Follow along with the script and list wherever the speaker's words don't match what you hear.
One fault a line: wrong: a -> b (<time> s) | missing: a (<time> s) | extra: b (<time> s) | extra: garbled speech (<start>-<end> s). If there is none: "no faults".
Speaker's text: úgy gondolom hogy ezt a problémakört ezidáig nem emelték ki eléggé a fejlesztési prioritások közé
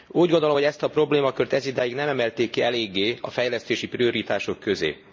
no faults